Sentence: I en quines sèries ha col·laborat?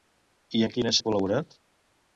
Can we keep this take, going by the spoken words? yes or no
no